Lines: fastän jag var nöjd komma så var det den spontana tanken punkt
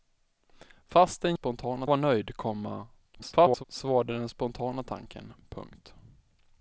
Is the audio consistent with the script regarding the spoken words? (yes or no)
no